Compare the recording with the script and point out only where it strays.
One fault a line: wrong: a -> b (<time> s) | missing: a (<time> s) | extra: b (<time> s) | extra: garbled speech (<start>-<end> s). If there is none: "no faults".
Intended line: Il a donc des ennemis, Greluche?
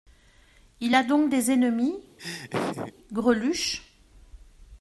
no faults